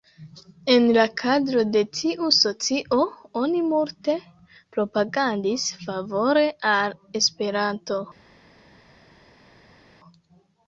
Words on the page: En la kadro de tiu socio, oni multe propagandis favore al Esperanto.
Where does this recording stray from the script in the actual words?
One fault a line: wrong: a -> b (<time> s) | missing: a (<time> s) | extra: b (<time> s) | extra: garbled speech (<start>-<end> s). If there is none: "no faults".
no faults